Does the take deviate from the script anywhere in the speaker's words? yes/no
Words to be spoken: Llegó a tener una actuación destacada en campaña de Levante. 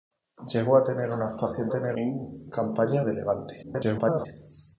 yes